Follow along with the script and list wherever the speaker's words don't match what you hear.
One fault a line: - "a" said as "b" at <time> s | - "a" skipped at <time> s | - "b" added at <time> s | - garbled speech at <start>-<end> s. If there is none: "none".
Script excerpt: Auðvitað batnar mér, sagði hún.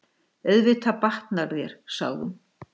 - "mér" said as "þér" at 1.6 s